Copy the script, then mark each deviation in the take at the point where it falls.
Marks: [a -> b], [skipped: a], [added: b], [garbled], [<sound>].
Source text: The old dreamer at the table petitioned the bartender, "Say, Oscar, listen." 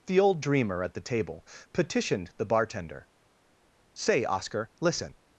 The old dreamer at the table petitioned the bartender, "Say, Oscar, listen."